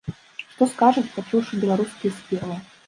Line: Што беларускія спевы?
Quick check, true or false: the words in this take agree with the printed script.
false